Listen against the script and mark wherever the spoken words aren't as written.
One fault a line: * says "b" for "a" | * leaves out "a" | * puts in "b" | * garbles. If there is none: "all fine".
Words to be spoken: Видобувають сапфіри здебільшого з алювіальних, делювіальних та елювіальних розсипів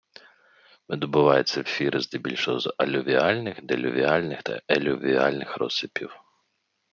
all fine